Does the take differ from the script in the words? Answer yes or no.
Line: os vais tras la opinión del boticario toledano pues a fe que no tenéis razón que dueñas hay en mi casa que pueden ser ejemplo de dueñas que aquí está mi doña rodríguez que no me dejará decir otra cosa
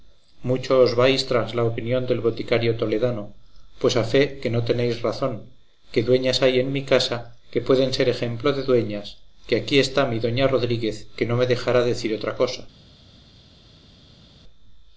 no